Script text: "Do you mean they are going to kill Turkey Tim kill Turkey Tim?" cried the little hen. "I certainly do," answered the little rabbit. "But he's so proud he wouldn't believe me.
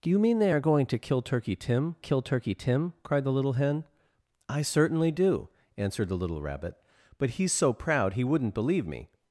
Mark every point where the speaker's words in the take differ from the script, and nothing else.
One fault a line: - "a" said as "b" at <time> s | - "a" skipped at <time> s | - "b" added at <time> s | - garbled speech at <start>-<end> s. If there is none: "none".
none